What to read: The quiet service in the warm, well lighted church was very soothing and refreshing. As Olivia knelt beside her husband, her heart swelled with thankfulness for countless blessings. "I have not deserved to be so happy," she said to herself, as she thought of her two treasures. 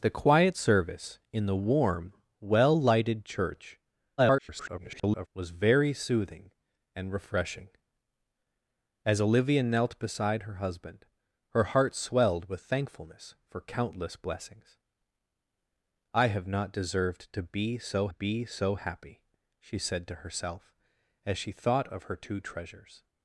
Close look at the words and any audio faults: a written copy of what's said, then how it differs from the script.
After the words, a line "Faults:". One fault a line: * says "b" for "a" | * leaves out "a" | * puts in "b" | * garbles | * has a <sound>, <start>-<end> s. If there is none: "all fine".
The quiet service in the warm, well lighted church [garbled] was very soothing and refreshing. As Olivia knelt beside her husband, her heart swelled with thankfulness for countless blessings. "I have not deserved to be so be so happy," she said to herself, as she thought of her two treasures.
Faults:
* garbles
* puts in "be so"